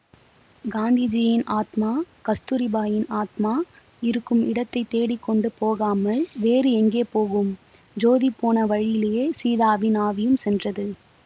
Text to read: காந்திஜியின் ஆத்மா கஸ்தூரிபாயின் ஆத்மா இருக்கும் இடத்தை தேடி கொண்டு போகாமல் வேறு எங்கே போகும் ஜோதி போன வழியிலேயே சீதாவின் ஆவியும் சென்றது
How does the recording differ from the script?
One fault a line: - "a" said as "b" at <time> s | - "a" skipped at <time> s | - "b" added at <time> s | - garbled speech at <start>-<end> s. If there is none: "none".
none